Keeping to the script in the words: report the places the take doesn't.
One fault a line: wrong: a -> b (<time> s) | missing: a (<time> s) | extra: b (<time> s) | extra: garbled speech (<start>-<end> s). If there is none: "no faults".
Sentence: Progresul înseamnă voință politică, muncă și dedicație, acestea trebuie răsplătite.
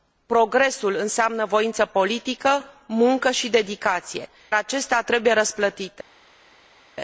no faults